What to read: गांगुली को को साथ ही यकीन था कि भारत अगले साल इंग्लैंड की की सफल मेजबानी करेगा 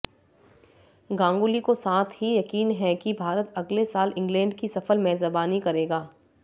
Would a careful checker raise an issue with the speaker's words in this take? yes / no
yes